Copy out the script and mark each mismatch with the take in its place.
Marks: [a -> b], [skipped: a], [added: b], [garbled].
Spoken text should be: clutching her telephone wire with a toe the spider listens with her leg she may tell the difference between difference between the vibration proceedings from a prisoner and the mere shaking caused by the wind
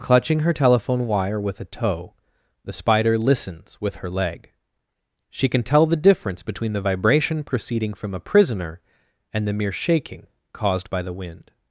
clutching her telephone wire with a toe the spider listens with her leg she [may -> can] tell the difference between [skipped: difference between] the vibration [proceedings -> proceeding] from a prisoner and the mere shaking caused by the wind